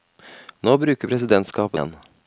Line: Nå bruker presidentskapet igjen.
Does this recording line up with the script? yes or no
yes